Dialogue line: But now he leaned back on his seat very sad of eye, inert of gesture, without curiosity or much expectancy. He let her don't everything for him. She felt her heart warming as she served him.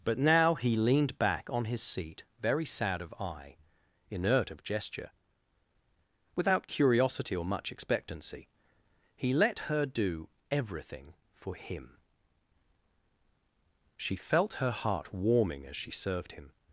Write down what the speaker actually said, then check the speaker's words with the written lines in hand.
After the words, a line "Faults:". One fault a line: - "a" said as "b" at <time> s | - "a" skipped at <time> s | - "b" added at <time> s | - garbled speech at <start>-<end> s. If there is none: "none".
But now he leaned back on his seat very sad of eye, inert of gesture, without curiosity or much expectancy. He let her do everything for him. She felt her heart warming as she served him.
Faults:
- "don't" said as "do" at 9.8 s